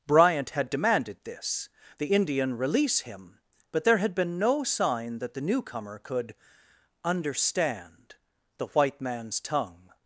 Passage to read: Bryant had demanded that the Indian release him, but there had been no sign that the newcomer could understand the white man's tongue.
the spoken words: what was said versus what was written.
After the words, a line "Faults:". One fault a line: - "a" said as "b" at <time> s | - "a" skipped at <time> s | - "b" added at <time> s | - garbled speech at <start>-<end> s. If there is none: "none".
Bryant had demanded this the Indian release him, but there had been no sign that the newcomer could understand the white man's tongue.
Faults:
- "that" said as "this" at 1.2 s